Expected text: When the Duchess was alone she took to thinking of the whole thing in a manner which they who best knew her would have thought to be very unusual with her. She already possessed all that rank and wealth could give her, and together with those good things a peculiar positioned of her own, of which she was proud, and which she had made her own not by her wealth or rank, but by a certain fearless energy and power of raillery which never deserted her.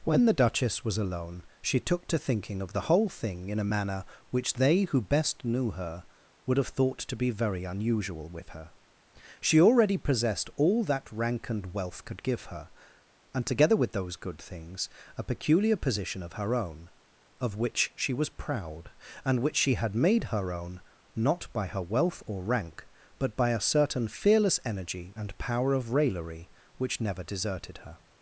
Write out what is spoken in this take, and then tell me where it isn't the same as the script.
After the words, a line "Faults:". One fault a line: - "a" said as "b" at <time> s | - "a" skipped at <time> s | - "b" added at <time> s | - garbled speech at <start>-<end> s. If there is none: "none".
When the Duchess was alone she took to thinking of the whole thing in a manner which they who best knew her would have thought to be very unusual with her. She already possessed all that rank and wealth could give her, and together with those good things a peculiar position of her own, of which she was proud, and which she had made her own not by her wealth or rank, but by a certain fearless energy and power of raillery which never deserted her.
Faults:
- "positioned" said as "position" at 15.8 s